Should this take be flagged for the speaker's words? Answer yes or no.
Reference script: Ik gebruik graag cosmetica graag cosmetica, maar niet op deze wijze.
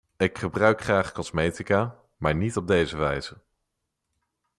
yes